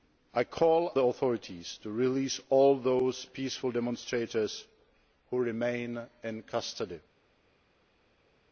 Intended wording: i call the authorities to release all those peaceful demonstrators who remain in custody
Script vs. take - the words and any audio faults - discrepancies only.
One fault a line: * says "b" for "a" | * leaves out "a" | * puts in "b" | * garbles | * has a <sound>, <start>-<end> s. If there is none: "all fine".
all fine